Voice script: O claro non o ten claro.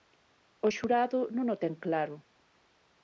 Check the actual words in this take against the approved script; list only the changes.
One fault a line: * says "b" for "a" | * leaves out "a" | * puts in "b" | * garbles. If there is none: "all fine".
* says "xurado" for "claro"